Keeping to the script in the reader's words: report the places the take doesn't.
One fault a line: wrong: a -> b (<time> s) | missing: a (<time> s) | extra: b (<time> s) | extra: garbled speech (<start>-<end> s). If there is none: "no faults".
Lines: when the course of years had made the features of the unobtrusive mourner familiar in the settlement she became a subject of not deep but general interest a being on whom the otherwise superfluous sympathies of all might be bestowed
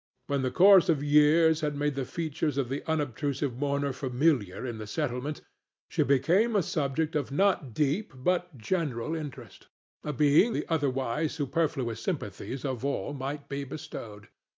missing: on whom (10.6 s)